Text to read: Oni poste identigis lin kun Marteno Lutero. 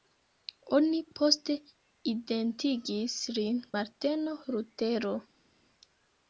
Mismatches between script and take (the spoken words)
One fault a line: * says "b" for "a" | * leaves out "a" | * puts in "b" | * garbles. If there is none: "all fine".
* leaves out "kun"